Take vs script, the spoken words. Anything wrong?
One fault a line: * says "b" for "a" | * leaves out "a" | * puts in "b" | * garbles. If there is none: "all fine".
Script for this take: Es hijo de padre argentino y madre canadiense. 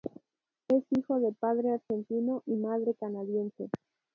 all fine